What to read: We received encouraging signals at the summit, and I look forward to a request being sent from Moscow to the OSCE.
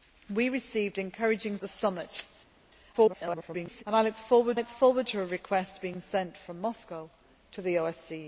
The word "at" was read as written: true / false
false